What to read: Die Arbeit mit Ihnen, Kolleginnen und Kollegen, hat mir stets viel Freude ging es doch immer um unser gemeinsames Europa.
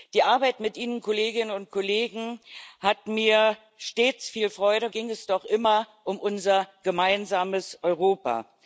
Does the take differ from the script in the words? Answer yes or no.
no